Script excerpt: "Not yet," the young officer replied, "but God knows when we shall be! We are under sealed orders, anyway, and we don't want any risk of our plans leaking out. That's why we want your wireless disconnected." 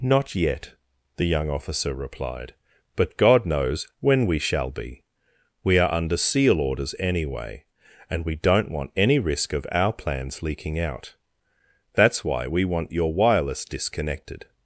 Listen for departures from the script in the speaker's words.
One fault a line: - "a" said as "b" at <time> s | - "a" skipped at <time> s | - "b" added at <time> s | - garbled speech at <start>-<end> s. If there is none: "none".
- "sealed" said as "seal" at 6.2 s